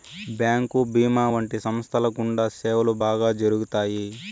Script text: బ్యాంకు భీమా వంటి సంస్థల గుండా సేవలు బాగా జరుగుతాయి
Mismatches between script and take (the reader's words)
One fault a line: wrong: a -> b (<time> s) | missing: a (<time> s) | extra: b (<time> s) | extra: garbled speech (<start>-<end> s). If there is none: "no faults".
no faults